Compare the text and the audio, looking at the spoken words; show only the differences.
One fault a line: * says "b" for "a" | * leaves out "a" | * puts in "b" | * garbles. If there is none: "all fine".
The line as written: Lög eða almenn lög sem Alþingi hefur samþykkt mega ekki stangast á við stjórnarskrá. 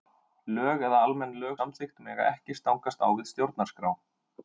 * leaves out "sem Alþingi hefur"